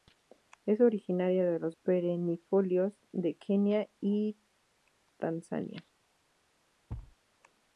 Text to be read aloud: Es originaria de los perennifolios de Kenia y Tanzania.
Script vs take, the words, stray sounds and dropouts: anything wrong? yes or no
yes